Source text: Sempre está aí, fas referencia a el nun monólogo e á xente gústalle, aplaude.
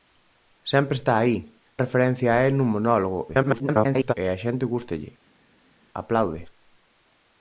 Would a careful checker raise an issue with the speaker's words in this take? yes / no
yes